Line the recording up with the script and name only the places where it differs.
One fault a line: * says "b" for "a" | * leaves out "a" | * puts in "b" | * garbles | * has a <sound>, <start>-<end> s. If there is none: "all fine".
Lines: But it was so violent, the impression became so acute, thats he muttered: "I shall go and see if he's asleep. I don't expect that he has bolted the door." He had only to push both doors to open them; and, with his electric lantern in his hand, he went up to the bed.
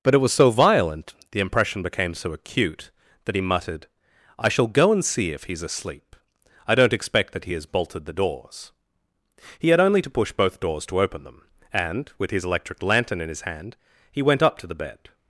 * says "that" for "thats"
* says "doors" for "door"